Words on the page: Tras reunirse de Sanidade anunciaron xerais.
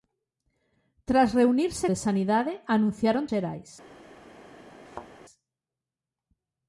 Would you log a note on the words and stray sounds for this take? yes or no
yes